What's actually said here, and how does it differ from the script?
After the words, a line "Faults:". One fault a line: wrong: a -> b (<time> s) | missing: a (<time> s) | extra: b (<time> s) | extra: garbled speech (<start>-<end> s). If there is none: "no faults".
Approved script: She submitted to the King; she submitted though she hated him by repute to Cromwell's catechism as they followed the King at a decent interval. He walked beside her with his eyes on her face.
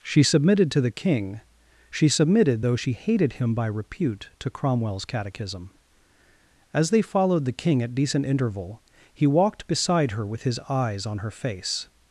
She submitted to the King; she submitted though she hated him by repute to Cromwell's catechism as they followed the King at decent interval. He walked beside her with his eyes on her face.
Faults:
missing: a (7.9 s)